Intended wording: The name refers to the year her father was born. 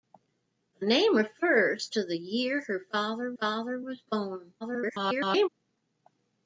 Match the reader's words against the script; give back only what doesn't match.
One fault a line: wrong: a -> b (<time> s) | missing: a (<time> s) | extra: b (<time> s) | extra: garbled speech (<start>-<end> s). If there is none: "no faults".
extra: father (3.4 s)
extra: garbled speech (4.6-5.5 s)